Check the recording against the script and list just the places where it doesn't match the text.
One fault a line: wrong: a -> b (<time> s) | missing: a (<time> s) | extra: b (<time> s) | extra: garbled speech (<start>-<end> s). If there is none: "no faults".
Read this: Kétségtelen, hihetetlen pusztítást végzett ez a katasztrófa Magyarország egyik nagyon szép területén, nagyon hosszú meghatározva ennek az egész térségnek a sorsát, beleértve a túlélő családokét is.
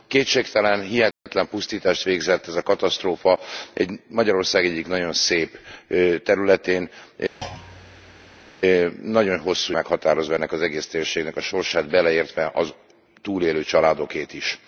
no faults